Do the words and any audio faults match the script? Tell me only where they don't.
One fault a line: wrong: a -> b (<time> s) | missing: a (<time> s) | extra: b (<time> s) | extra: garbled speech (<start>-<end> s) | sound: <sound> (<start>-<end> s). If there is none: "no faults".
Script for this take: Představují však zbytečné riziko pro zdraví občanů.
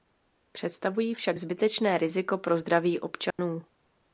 sound: dropout (3.3-3.4 s)